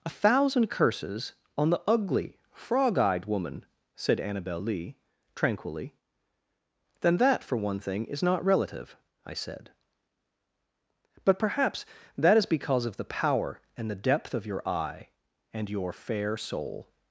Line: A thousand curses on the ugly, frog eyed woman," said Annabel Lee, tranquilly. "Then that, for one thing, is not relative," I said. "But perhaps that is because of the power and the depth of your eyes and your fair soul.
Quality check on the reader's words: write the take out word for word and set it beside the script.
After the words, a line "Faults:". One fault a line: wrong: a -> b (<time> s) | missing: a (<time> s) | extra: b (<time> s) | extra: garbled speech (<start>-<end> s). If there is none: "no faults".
A thousand curses on the ugly, frog eyed woman," said Annabel Lee, tranquilly. "Then that, for one thing, is not relative," I said. "But perhaps that is because of the power and the depth of your eye and your fair soul.
Faults:
wrong: eyes -> eye (14.7 s)